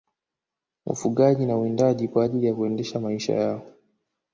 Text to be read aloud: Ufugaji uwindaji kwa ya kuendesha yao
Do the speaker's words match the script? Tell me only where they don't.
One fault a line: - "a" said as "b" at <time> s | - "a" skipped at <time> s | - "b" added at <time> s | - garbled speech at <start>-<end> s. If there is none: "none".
- "na" added at 1.4 s
- "ajili" added at 2.2 s
- "maisha" added at 3.0 s